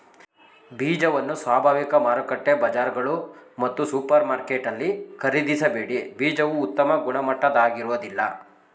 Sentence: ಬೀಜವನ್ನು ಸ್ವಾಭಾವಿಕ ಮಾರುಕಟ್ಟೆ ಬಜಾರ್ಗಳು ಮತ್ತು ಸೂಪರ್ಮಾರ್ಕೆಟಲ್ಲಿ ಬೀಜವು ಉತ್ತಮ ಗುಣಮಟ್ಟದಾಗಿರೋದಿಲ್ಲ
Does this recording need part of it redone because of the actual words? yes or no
yes